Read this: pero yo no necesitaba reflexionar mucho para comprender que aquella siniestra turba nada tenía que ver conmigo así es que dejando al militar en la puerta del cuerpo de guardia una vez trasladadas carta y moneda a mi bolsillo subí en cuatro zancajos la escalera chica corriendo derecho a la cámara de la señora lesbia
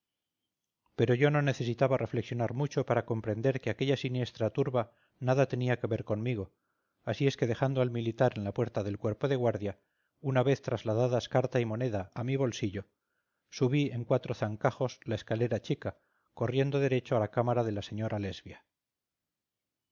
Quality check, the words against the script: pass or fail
pass